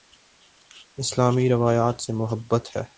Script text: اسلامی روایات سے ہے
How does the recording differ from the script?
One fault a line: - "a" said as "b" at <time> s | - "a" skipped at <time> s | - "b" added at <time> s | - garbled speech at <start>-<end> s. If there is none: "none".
- "محبت" added at 2.1 s